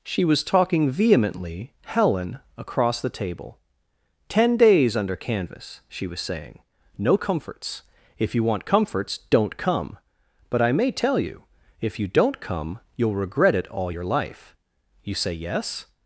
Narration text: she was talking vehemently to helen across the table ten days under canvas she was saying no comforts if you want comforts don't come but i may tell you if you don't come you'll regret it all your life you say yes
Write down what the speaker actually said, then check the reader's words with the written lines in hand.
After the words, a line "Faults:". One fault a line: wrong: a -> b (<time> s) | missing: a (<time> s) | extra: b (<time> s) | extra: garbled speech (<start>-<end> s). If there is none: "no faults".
she was talking vehemently helen across the table ten days under canvas she was saying no comforts if you want comforts don't come but i may tell you if you don't come you'll regret it all your life you say yes
Faults:
missing: to (1.7 s)